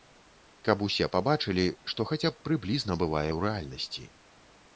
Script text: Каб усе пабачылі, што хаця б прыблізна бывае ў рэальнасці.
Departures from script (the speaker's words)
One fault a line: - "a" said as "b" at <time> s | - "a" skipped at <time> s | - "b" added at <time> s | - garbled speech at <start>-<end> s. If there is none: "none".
none